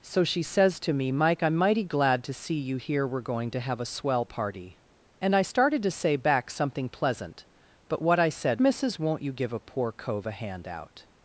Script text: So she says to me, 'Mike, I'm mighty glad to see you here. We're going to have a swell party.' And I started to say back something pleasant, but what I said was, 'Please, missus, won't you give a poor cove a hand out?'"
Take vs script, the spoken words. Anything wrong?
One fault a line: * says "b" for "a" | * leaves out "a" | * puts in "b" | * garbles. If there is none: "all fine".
* leaves out "was Please"